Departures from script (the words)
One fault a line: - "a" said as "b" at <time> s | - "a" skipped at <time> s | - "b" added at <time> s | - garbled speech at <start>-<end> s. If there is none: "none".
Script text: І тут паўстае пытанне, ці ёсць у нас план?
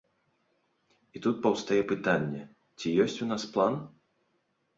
none